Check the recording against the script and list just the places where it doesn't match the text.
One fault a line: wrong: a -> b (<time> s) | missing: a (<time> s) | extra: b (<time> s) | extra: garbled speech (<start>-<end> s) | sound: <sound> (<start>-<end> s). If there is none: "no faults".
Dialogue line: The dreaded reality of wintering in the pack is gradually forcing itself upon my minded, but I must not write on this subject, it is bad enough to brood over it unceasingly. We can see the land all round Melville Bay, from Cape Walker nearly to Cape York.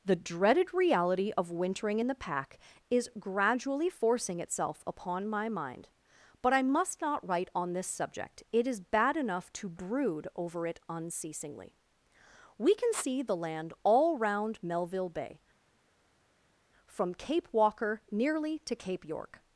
wrong: minded -> mind (5.5 s)